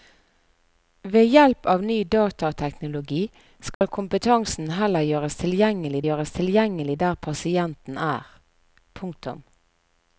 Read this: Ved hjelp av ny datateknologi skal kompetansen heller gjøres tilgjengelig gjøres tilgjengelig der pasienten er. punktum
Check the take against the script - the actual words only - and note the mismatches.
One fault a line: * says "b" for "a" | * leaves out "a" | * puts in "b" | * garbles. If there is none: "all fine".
all fine